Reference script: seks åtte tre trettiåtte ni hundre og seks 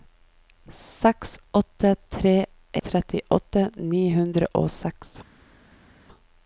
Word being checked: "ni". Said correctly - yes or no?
yes